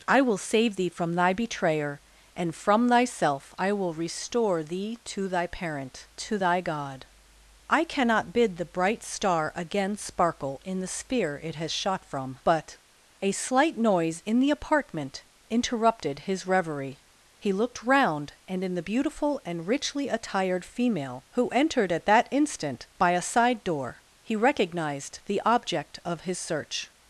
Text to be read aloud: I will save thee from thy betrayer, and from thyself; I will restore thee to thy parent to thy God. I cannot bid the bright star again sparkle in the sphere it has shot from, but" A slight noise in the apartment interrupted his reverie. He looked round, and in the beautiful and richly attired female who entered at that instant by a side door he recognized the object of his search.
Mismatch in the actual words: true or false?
false